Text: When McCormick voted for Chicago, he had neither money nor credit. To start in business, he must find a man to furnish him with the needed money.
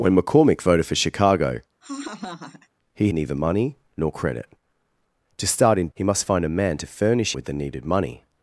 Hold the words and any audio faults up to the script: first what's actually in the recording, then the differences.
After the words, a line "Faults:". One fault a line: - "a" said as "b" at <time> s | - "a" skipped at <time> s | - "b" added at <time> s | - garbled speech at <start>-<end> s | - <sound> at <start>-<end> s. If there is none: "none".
When McCormick voted for Chicago, he neither money nor credit. To start in he must find a man to furnish with the needed money.
Faults:
- laugh at 1.8-2.7 s
- "had" skipped at 3.1 s
- "business" skipped at 5.9 s
- "him" skipped at 7.3 s